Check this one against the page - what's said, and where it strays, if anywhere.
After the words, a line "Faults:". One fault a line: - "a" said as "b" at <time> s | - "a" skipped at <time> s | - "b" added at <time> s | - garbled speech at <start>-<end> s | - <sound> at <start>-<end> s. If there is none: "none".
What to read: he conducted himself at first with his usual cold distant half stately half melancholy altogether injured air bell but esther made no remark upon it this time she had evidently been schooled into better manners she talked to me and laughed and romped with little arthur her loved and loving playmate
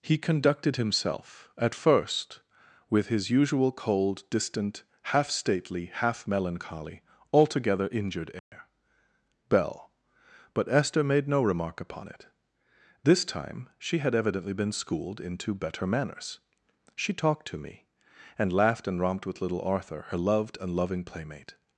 he conducted himself at first with his usual cold distant half stately half melancholy altogether injured air bell but esther made no remark upon it this time she had evidently been schooled into better manners she talked to me and laughed and romped with little arthur her loved and loving playmate
Faults:
- dropout at 8.4-8.5 s